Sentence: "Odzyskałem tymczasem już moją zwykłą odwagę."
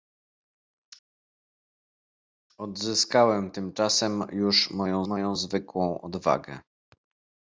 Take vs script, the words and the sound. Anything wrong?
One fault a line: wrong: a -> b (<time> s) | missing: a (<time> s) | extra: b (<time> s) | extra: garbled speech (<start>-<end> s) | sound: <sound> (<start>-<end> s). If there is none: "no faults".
extra: moją (5.0 s)